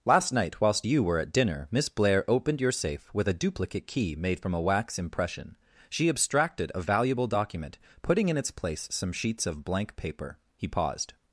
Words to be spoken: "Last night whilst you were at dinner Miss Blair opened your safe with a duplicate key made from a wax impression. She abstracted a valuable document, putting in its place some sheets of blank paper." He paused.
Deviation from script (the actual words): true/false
false